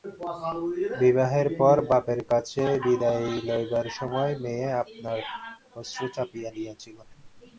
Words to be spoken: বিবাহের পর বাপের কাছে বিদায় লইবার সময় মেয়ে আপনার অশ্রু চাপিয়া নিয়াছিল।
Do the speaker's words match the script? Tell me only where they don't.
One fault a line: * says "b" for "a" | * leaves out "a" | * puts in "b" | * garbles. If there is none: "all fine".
all fine